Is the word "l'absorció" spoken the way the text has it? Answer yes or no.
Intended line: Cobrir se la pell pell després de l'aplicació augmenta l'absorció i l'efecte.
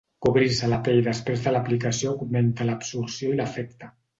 yes